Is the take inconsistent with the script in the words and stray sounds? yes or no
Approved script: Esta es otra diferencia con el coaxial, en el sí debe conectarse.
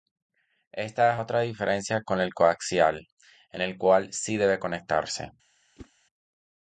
yes